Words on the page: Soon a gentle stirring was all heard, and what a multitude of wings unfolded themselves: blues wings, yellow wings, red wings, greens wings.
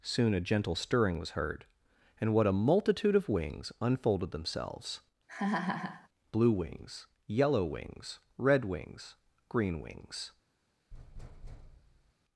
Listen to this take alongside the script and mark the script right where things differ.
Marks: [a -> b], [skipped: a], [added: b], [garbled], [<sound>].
Soon a gentle stirring was [skipped: all] heard, and what a multitude of wings unfolded themselves: [laugh] [blues -> blue] wings, yellow wings, red wings, [greens -> green] wings. [thud]